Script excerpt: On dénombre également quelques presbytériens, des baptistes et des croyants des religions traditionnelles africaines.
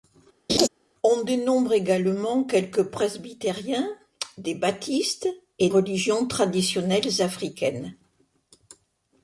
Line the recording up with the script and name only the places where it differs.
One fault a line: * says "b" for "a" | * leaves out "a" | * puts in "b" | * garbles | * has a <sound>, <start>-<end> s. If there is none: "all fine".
* has a laugh, 0.5-0.7 s
* leaves out "des croyants des"